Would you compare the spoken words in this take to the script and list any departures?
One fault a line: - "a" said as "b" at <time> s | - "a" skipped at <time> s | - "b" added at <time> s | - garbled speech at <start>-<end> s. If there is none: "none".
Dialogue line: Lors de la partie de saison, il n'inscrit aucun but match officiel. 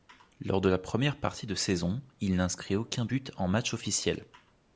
- "première" added at 0.8 s
- "en" added at 3.4 s